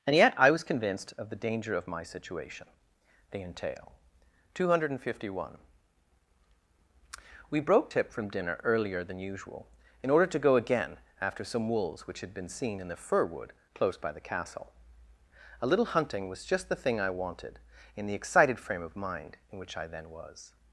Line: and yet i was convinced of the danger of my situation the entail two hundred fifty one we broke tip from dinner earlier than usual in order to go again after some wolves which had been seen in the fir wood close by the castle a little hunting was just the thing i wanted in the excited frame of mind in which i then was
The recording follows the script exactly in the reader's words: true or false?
true